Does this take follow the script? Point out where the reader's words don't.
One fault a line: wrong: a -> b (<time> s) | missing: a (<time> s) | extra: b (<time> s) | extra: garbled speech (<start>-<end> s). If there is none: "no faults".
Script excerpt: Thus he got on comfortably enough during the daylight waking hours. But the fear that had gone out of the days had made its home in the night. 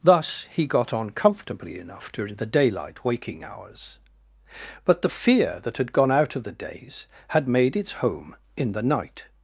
no faults